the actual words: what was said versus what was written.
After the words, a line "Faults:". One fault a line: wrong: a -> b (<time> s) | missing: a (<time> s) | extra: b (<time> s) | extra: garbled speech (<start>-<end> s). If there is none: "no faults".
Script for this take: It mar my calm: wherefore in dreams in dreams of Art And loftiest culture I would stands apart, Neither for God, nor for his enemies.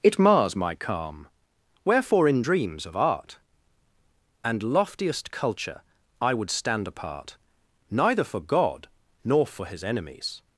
It mars my calm: wherefore in dreams of Art And loftiest culture I would stand apart, Neither for God, nor for his enemies.
Faults:
wrong: mar -> mars (0.2 s)
missing: in dreams (2.9 s)
wrong: stands -> stand (6.5 s)